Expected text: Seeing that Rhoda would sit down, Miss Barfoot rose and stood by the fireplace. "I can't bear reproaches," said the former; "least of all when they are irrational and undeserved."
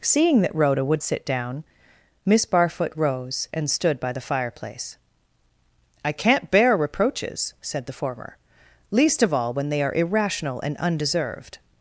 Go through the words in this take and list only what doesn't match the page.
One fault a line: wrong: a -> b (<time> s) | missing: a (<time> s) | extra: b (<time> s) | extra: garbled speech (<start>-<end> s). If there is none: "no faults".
no faults